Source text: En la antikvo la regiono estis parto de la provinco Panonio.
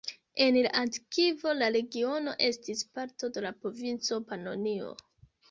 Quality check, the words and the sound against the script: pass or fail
pass